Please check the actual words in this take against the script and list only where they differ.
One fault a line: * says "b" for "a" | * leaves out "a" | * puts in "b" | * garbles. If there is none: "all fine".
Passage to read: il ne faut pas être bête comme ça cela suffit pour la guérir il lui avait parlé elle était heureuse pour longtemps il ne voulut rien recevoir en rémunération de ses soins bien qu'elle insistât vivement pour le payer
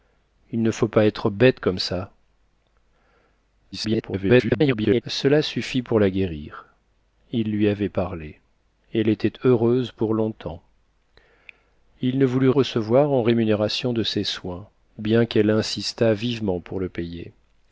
* garbles
* leaves out "rien"